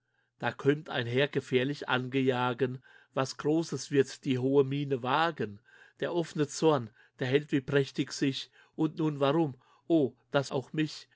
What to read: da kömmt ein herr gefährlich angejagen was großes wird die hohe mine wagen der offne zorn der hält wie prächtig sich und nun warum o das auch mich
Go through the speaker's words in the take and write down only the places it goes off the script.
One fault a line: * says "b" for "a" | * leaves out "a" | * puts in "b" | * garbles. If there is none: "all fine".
all fine